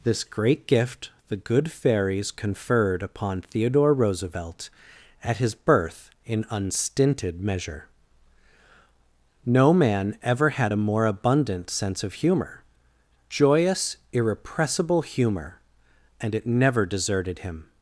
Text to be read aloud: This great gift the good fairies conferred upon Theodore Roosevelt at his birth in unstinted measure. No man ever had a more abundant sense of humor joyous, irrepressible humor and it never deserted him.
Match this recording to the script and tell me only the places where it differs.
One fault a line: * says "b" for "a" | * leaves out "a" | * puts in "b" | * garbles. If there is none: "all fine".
all fine